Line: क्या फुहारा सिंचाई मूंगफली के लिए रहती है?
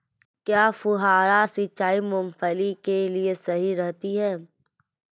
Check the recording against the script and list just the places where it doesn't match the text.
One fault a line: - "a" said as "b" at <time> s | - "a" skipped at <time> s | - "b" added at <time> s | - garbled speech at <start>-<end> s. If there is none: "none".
- "सही" added at 3.4 s